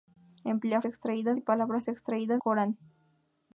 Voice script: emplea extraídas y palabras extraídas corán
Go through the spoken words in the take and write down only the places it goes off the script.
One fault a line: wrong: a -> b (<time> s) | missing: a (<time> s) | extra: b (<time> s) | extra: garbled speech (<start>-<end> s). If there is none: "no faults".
no faults